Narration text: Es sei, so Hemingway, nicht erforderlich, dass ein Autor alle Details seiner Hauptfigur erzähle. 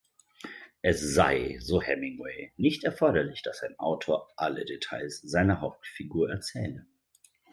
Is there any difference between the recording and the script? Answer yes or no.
no